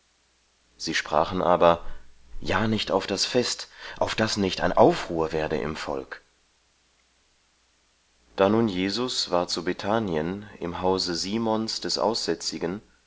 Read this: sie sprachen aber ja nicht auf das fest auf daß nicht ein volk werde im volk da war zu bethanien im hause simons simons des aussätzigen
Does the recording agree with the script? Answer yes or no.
no